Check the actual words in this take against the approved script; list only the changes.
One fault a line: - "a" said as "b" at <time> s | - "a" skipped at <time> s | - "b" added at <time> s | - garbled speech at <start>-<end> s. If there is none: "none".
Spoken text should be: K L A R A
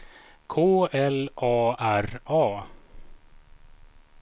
none